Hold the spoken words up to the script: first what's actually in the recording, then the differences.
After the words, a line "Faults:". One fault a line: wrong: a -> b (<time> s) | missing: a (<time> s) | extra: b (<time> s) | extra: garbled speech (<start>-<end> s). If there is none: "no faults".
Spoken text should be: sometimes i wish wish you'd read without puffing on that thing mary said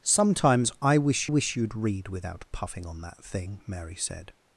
sometimes i wish wish you'd read without puffing on that thing mary said
Faults:
no faults